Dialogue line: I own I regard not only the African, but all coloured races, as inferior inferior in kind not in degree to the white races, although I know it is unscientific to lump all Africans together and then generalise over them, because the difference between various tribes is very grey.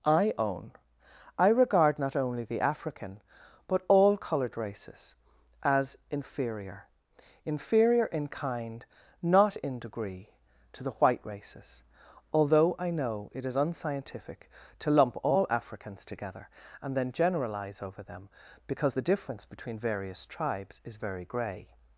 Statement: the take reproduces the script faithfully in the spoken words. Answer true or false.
true